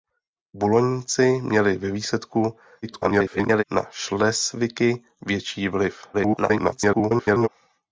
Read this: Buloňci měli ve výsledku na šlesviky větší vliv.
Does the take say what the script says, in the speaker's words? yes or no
no